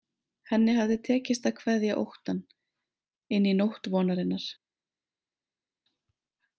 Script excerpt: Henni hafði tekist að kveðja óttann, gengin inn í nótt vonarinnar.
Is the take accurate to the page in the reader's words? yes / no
no